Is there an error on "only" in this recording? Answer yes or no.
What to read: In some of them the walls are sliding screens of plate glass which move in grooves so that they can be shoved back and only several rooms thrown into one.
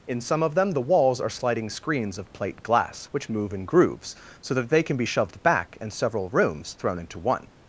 yes